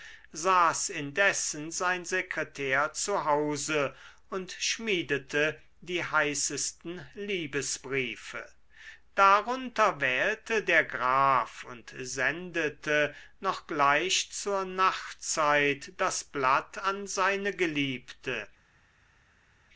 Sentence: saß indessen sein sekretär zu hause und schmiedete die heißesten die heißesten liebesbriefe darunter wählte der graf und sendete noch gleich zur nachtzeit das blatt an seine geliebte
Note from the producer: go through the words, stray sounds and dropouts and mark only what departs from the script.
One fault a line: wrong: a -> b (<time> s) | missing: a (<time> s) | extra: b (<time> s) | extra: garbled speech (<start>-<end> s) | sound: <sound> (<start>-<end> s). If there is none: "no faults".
missing: die heißesten (7.1 s)